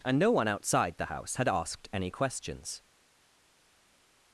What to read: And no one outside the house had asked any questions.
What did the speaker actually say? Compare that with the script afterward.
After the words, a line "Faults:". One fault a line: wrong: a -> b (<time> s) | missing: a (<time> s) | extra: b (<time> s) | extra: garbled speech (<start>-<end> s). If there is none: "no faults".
And no one outside the house had asked any questions.
Faults:
no faults